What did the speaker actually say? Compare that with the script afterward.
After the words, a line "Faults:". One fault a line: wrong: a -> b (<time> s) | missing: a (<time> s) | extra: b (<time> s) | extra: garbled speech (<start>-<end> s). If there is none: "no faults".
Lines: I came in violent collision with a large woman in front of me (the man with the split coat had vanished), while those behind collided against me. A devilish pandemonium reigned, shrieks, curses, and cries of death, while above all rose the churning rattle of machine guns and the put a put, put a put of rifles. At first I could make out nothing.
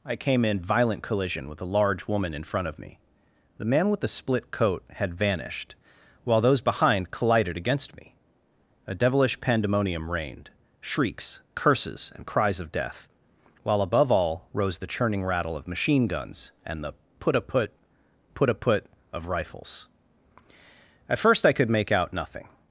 I came in violent collision with a large woman in front of me (the man with the split coat had vanished), while those behind collided against me. A devilish pandemonium reigned, shrieks, curses, and cries of death, while above all rose the churning rattle of machine guns and the put a put, put a put of rifles. At first I could make out nothing.
Faults:
no faults